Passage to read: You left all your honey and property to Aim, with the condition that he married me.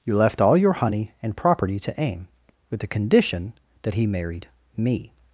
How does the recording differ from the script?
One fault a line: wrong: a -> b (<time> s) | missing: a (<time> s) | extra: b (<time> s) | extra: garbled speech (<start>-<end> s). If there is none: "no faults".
no faults